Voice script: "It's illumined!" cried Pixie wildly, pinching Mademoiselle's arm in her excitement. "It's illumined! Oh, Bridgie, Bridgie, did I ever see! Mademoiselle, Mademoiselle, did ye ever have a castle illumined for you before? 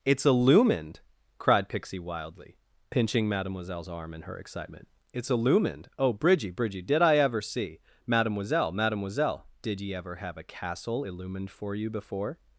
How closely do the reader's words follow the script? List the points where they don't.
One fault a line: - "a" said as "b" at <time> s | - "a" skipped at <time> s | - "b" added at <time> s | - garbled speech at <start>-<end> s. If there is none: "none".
none